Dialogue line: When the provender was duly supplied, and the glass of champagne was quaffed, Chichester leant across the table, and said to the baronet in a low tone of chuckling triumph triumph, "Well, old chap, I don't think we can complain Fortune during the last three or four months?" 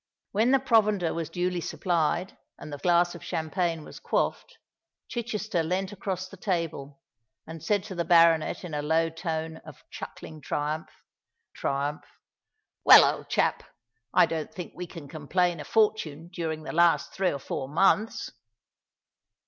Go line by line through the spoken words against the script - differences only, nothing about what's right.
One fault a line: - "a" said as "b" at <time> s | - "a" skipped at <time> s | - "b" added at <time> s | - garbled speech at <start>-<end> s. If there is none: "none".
none